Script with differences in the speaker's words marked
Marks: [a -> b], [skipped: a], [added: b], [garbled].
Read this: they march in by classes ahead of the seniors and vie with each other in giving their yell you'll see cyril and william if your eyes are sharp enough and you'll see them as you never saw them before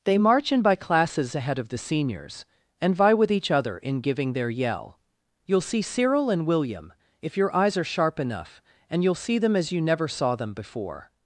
they march in by classes ahead of the seniors and vie with each other in giving their yell you'll see cyril and william if your eyes are sharp enough and you'll see them as you never saw them before